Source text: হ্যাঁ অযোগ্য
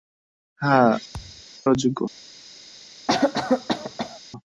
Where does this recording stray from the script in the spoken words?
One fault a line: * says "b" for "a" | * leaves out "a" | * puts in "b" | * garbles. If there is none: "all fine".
all fine